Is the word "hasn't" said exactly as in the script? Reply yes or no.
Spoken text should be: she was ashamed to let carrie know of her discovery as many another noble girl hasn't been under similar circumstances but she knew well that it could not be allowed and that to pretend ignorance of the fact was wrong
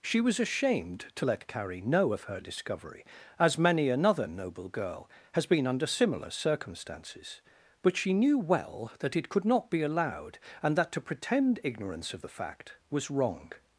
no